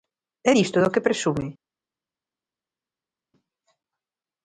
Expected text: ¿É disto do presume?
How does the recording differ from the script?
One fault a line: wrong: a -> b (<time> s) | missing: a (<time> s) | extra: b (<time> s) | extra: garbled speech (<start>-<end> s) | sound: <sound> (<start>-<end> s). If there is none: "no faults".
extra: que (0.9 s)